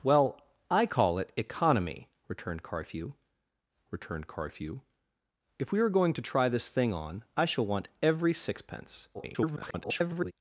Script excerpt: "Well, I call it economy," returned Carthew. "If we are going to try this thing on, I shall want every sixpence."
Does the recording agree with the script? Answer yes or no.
no